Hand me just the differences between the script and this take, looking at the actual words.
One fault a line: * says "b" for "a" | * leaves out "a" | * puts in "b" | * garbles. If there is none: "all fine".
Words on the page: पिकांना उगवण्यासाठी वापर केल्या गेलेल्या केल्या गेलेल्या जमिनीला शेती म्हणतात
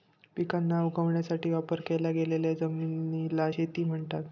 * leaves out "केल्या गेलेल्या"